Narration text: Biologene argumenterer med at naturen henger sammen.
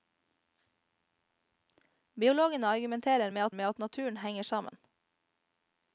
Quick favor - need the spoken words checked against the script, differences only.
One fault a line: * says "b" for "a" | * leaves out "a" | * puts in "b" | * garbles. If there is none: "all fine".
* puts in "med at"